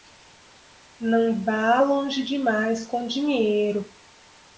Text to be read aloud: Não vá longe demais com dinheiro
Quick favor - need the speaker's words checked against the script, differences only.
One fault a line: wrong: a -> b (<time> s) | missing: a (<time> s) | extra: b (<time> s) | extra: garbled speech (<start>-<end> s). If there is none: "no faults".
no faults